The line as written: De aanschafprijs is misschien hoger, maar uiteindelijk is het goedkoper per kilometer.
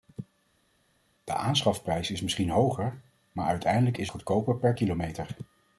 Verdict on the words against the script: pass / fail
fail